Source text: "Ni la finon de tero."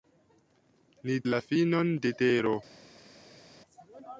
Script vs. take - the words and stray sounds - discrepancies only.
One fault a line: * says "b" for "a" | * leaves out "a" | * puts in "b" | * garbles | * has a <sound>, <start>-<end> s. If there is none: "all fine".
all fine